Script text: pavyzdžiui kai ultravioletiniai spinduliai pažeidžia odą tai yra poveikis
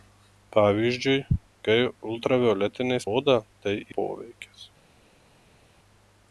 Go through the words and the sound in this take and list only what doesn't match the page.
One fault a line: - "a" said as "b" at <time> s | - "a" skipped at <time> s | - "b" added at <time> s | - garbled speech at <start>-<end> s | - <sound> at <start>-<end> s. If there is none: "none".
- "spinduliai pažeidžia" skipped at 3.0 s
- "yra" skipped at 3.7 s